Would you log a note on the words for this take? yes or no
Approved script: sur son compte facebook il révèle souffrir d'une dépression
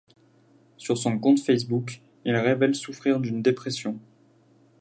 no